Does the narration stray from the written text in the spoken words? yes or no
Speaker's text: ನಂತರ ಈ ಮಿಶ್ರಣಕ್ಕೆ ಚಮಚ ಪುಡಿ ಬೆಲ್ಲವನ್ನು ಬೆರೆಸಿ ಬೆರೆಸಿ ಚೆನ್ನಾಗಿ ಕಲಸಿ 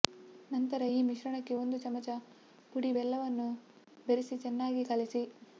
yes